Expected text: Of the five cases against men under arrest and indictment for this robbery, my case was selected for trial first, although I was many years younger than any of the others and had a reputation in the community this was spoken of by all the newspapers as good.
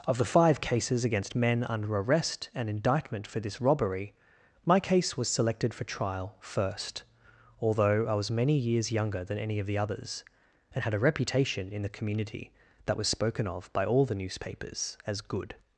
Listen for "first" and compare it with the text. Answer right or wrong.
right